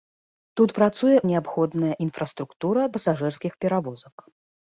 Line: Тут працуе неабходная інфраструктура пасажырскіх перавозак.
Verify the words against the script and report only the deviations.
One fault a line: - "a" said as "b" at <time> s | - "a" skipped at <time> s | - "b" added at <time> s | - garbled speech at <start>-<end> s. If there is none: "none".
none